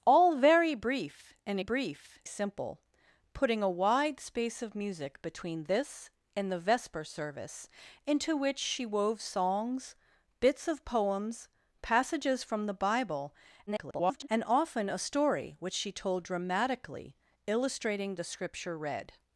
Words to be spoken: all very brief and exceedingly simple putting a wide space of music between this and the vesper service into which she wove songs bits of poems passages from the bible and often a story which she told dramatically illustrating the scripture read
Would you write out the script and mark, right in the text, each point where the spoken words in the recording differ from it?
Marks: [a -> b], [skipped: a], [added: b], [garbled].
all very brief and [exceedingly -> brief] simple putting a wide space of music between this and the vesper service into which she wove songs bits of poems passages from the bible [garbled] and often a story which she told dramatically illustrating the scripture read